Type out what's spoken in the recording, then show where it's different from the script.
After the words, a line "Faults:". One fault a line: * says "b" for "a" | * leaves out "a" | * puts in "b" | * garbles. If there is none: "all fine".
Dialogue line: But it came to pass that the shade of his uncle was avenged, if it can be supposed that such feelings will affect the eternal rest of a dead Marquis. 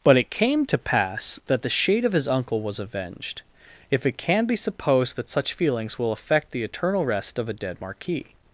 But it came to pass that the shade of his uncle was avenged, if it can be supposed that such feelings will affect the eternal rest of a dead Marquis.
Faults:
all fine